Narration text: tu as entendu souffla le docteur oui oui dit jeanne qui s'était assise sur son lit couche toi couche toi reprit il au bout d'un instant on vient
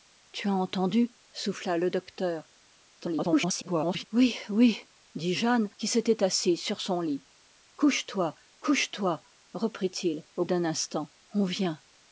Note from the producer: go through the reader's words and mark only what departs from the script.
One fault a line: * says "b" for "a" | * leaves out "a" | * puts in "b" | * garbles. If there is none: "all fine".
* garbles
* leaves out "bout"